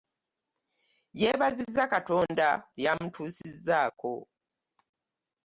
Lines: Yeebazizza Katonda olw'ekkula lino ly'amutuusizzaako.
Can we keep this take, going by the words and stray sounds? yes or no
no